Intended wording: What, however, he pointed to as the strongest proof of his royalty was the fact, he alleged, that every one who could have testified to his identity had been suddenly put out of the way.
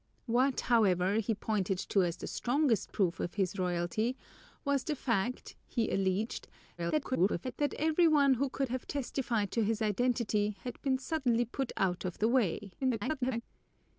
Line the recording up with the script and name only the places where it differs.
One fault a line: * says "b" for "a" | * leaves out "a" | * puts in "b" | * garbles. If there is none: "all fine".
* garbles
* garbles